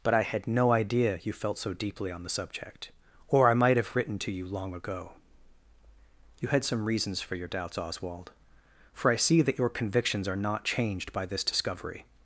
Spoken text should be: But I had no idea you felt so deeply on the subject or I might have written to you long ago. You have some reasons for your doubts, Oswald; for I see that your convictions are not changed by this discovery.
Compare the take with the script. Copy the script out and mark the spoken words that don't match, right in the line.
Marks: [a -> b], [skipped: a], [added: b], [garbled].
But I had no idea you felt so deeply on the subject or I might have written to you long ago. You [have -> had] some reasons for your doubts, Oswald; for I see that your convictions are not changed by this discovery.